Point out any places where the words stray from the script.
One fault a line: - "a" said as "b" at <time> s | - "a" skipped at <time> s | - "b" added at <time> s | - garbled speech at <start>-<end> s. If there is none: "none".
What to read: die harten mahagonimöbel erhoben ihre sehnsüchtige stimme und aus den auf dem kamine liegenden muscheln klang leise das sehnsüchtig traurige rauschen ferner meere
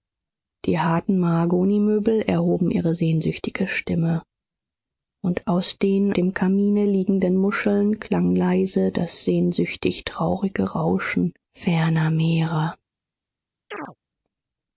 - "auf" skipped at 6.2 s